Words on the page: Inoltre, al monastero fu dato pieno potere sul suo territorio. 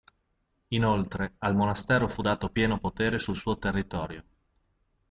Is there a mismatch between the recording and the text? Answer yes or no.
no